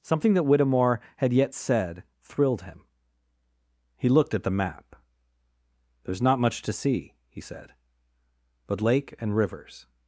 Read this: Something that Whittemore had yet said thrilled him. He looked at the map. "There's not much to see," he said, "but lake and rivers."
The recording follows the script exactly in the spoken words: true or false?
true